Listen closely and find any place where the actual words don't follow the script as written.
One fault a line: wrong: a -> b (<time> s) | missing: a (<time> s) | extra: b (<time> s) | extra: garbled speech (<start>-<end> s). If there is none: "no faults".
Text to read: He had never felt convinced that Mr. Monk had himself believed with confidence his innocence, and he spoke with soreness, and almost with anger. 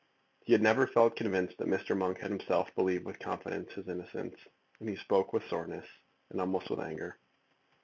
no faults